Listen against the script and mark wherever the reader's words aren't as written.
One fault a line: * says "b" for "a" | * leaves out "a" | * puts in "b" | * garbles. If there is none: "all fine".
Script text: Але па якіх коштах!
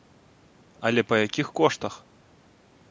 all fine